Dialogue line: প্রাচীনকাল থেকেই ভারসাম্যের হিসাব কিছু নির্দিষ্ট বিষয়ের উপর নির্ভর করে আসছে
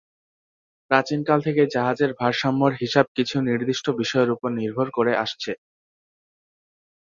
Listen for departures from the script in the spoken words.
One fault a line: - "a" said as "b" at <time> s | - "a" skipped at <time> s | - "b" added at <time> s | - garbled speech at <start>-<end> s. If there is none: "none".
- "জাহাজের" added at 1.8 s